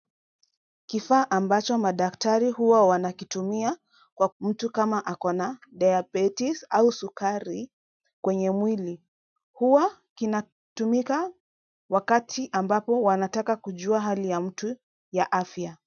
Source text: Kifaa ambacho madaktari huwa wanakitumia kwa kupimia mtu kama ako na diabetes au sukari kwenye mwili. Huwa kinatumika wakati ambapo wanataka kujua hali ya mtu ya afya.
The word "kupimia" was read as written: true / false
false